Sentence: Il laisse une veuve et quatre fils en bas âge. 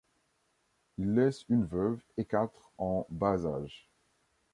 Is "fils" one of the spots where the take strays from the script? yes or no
yes